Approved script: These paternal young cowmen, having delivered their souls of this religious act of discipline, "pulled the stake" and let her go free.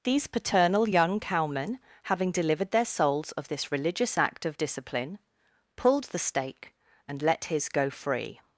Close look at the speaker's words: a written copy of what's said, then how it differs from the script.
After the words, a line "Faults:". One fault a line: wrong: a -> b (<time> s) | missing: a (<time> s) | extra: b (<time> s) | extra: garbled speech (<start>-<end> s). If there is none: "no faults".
These paternal young cowmen, having delivered their souls of this religious act of discipline, "pulled the stake" and let his go free.
Faults:
wrong: her -> his (7.5 s)